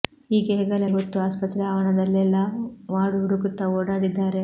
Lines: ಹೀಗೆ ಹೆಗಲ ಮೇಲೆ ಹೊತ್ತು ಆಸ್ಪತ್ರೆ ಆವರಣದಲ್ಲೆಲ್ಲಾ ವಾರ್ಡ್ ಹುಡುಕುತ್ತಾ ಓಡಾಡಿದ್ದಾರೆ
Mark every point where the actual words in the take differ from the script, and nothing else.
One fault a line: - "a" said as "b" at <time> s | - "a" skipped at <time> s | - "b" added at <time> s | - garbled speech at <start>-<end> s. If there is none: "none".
- "ಮೇಲೆ" skipped at 0.8 s